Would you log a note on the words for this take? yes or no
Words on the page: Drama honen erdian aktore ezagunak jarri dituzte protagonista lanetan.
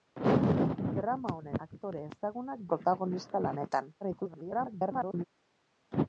yes